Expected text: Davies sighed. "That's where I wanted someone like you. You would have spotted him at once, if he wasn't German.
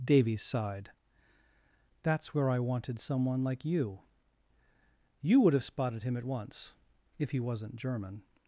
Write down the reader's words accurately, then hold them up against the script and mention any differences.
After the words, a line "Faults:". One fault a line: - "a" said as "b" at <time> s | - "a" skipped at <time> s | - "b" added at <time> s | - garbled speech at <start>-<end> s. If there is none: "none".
Davies sighed. "That's where I wanted someone like you. You would have spotted him at once, if he wasn't German.
Faults:
none